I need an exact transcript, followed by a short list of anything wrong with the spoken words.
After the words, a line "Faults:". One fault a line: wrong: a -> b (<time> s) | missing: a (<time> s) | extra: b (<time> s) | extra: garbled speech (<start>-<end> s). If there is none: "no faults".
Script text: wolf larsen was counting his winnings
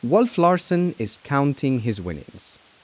wolf larsen is counting his winnings
Faults:
wrong: was -> is (0.9 s)